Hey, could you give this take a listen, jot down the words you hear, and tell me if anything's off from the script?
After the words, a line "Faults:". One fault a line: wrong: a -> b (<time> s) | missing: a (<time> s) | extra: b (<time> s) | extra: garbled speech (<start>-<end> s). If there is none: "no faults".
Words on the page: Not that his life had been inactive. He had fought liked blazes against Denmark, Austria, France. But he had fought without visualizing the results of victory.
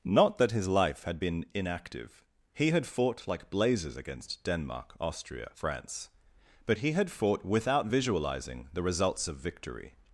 Not that his life had been inactive. He had fought like blazes against Denmark, Austria, France. But he had fought without visualizing the results of victory.
Faults:
wrong: liked -> like (3.3 s)